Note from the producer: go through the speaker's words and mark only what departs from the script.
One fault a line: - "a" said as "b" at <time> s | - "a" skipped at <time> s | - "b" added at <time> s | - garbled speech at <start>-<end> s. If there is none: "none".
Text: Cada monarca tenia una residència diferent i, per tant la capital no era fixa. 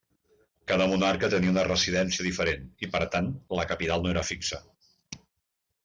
none